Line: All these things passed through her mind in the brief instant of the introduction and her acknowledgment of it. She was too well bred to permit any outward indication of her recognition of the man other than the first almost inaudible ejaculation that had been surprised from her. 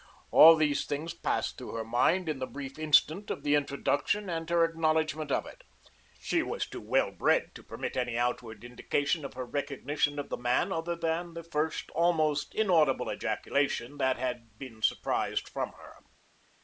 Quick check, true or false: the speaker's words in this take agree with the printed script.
true